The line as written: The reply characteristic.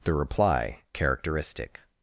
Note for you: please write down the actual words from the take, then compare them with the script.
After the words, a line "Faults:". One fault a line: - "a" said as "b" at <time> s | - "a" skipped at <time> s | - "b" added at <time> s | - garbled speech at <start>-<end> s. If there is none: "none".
The reply characteristic.
Faults:
none